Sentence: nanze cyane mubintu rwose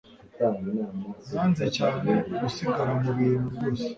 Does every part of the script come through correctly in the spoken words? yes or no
no